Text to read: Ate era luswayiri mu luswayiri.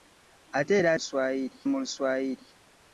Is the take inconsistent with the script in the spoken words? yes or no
no